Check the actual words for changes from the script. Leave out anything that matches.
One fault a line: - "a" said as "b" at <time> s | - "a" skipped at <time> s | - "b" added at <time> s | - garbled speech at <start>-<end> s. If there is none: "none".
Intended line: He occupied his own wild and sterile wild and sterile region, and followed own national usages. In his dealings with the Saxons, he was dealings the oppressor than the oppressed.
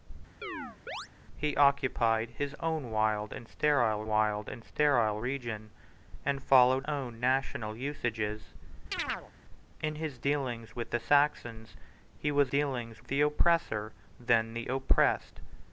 none